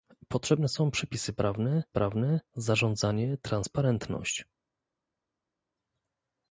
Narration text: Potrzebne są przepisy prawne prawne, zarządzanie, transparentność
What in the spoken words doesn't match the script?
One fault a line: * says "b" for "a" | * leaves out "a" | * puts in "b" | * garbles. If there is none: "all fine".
all fine